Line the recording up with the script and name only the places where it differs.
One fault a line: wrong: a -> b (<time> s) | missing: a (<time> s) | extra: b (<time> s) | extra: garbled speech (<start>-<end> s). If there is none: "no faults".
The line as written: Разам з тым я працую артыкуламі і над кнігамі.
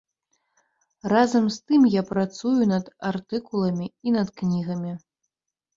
extra: над (2.7 s)